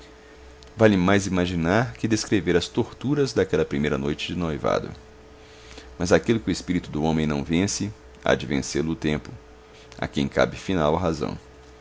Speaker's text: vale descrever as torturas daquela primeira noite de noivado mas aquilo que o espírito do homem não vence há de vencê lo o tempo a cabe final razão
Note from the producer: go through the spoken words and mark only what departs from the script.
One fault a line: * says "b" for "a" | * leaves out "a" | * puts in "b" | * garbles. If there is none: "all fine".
* puts in "mais imaginar que"
* puts in "quem"